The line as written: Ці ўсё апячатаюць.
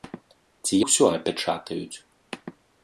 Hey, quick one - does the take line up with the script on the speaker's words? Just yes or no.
yes